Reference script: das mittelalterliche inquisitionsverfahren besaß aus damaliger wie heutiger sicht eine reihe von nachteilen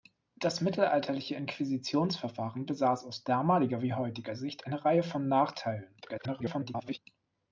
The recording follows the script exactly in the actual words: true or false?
false